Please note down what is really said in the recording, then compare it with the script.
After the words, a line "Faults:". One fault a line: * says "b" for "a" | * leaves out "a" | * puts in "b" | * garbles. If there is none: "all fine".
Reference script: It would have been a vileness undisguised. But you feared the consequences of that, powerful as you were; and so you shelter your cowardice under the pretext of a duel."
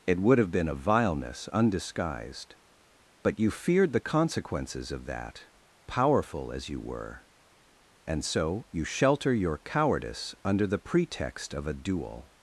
It would have been a vileness undisguised. But you feared the consequences of that, powerful as you were; and so you shelter your cowardice under the pretext of a duel."
Faults:
all fine